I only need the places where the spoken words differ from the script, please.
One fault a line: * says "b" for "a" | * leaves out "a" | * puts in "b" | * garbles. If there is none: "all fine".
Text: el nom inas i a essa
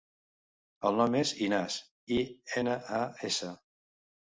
* puts in "és"
* puts in "ena"